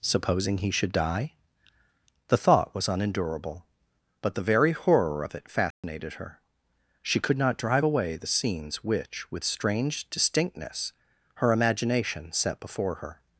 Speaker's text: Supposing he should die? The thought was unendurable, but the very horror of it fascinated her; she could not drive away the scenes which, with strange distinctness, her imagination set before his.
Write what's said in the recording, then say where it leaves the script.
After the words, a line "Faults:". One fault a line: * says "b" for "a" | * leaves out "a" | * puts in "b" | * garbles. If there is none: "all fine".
Supposing he should die? The thought was unendurable, but the very horror of it fascinated her; she could not drive away the scenes which, with strange distinctness, her imagination set before her.
Faults:
* says "her" for "his"